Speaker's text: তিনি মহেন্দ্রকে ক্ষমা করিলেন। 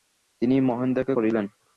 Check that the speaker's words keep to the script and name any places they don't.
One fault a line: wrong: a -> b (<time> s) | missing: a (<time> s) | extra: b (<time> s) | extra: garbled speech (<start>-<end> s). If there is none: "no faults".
missing: ক্ষমা (1.1 s)